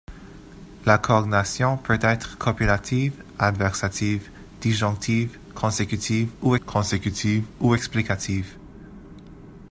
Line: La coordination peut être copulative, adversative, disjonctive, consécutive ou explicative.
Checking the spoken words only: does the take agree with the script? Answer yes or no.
no